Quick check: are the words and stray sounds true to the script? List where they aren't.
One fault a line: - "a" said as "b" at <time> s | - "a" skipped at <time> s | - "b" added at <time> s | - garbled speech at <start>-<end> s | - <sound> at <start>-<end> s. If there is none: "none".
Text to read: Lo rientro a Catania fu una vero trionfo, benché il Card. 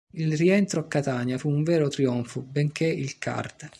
- "Lo" said as "Il" at 0.1 s
- "una" said as "un" at 1.5 s